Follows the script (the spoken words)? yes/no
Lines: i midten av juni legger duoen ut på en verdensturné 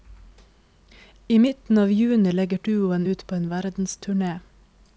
yes